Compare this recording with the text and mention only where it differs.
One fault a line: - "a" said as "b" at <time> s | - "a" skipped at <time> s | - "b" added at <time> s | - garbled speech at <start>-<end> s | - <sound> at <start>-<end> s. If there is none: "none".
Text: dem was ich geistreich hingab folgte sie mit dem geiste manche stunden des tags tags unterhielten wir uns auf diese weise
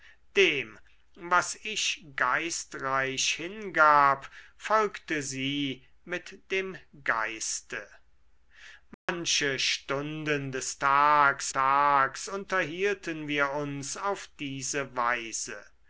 - dropout at 8.9-9.1 s